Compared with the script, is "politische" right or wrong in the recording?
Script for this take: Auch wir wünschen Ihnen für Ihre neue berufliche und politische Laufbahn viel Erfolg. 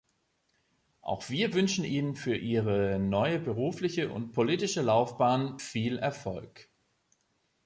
right